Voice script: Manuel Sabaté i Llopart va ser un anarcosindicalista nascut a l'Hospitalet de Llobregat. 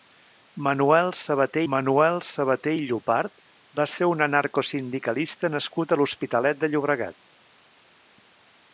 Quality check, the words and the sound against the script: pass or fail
fail